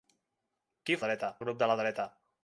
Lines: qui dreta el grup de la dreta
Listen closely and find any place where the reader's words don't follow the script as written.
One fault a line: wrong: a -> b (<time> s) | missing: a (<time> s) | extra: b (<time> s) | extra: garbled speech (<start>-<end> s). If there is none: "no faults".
no faults